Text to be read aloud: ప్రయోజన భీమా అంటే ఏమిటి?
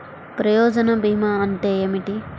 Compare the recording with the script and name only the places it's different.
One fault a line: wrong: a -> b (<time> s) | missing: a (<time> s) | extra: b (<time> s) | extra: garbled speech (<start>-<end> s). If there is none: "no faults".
no faults